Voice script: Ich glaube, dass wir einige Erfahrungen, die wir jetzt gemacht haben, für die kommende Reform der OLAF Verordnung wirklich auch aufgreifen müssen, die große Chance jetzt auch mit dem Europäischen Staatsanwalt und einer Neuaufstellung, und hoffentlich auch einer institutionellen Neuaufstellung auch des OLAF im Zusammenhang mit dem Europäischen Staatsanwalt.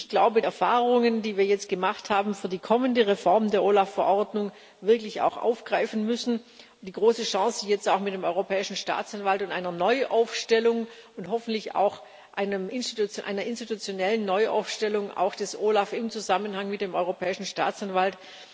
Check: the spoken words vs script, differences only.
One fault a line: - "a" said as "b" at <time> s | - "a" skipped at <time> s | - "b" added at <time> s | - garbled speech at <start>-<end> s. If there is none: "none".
- "dass wir einige" skipped at 0.4 s